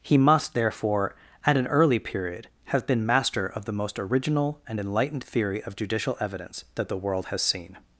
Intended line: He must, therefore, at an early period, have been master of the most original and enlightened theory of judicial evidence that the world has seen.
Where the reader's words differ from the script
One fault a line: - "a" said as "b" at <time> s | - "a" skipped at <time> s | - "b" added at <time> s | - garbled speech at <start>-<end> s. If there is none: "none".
none